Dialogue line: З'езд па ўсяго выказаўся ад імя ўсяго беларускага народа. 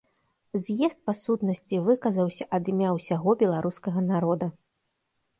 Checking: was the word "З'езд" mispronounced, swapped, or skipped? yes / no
no